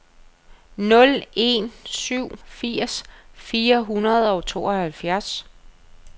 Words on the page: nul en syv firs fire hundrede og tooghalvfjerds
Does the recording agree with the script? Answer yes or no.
yes